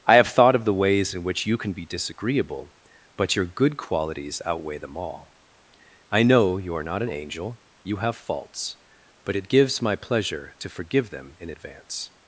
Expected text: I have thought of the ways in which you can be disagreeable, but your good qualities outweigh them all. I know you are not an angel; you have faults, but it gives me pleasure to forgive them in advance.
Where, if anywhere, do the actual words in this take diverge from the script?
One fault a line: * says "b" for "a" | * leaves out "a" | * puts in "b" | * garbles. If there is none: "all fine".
* says "my" for "me"